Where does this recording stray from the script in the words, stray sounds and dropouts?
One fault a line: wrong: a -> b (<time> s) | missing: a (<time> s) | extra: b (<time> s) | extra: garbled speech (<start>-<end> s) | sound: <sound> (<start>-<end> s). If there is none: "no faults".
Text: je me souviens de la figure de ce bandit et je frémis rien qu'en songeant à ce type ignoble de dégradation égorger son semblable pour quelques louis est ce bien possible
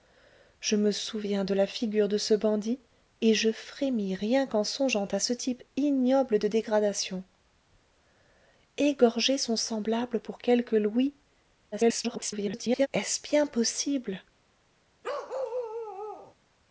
extra: garbled speech (11.7-12.9 s)
sound: bark (15.0-16.3 s)